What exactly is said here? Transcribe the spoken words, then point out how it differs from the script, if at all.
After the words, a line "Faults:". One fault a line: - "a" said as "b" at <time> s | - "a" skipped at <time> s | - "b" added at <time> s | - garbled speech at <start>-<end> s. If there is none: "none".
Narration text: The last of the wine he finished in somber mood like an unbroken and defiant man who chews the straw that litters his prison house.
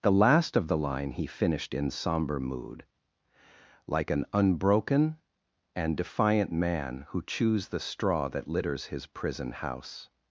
The last of the line he finished in somber mood like an unbroken and defiant man who chews the straw that litters his prison house.
Faults:
- "wine" said as "line" at 0.8 s